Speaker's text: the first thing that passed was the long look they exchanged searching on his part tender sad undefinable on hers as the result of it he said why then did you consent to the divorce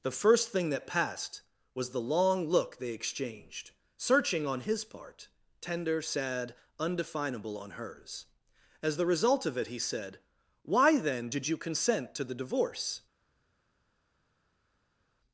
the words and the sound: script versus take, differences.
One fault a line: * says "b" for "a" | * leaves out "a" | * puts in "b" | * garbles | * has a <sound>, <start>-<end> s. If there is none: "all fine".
all fine